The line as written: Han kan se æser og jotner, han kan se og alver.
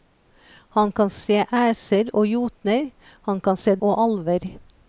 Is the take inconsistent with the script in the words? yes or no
no